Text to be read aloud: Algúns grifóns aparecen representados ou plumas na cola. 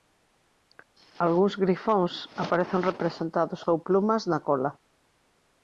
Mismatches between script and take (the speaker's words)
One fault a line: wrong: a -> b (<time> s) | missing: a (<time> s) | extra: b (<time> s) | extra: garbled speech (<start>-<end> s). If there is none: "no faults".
no faults